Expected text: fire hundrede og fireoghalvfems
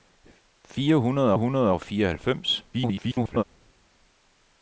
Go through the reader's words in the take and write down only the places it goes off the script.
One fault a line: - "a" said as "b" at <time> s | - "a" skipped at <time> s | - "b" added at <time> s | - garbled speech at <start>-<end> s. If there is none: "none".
- "hundrede" added at 1.3 s
- garbled speech at 2.7-3.4 s